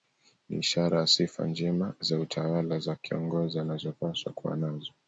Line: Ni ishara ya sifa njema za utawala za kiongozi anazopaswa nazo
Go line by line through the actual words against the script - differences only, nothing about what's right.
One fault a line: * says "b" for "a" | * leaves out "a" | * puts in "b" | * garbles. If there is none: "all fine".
* puts in "kuwa"